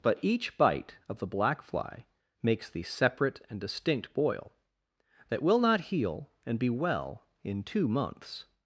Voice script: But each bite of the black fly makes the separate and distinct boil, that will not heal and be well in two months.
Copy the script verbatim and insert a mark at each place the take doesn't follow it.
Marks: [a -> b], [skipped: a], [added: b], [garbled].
But each bite of the black fly makes the separate and distinct boil, that will not heal and be well in two months.